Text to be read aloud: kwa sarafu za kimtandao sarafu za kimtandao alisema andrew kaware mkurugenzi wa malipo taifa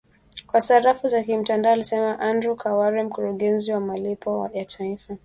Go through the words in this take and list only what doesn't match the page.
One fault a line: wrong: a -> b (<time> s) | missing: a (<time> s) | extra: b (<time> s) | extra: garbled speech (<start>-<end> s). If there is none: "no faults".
missing: sarafu za kimtandao (1.7 s)
extra: ya (4.5 s)